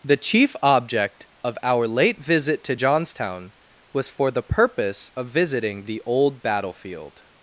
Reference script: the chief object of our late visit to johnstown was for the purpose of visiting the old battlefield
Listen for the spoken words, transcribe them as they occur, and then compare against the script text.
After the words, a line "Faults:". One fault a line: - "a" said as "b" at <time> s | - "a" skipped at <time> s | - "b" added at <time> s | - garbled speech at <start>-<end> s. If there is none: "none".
the chief object of our late visit to johnstown was for the purpose of visiting the old battlefield
Faults:
none